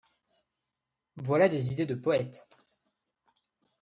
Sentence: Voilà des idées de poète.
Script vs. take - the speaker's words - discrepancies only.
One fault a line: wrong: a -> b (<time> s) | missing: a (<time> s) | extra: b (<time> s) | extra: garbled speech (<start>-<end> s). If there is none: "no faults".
no faults